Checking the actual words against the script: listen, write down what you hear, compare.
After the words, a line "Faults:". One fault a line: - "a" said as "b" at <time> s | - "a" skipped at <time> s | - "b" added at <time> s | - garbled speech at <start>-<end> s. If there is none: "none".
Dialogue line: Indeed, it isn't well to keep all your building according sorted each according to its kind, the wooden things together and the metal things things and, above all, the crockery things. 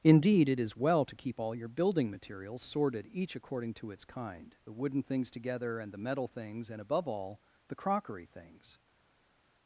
Indeed, it is well to keep all your building materials sorted each according to its kind, the wooden things together and the metal things and, above all, the crockery things.
Faults:
- "isn't" said as "is" at 0.6 s
- "according" said as "materials" at 2.1 s
- "things" skipped at 6.7 s